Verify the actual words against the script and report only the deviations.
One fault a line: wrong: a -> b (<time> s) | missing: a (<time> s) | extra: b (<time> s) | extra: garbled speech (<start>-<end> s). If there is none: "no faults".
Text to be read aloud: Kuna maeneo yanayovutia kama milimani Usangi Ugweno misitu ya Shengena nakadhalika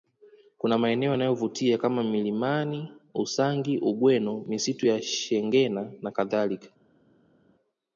no faults